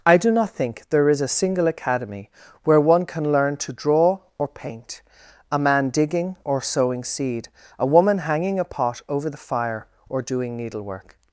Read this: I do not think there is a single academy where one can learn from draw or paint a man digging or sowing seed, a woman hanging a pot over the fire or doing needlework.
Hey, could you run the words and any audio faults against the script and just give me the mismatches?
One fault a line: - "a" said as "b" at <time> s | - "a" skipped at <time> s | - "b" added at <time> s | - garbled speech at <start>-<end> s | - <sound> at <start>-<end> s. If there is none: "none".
- "from" said as "to" at 3.6 s